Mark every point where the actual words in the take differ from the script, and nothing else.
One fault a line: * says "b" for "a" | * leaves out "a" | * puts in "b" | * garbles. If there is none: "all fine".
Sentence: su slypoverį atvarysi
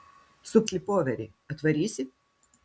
all fine